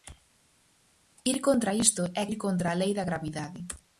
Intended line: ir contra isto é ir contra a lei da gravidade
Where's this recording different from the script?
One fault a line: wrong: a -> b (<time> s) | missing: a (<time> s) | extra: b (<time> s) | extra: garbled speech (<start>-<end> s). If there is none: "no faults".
no faults